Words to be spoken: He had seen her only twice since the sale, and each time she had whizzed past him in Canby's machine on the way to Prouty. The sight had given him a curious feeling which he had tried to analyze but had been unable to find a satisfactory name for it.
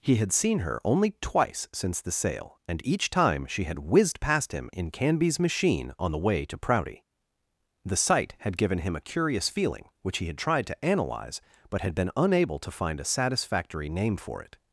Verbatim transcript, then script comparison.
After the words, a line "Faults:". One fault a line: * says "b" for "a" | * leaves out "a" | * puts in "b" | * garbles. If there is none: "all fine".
He had seen her only twice since the sale, and each time she had whizzed past him in Canby's machine on the way to Prouty. The sight had given him a curious feeling which he had tried to analyze but had been unable to find a satisfactory name for it.
Faults:
all fine